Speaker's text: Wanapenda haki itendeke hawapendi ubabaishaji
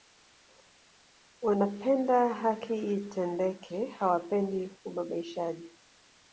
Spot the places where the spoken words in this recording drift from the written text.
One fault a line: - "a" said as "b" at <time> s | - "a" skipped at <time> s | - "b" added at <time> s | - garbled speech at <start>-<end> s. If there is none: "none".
none